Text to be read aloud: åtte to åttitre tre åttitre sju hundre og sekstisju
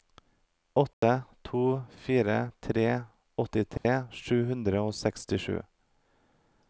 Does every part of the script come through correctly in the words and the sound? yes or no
no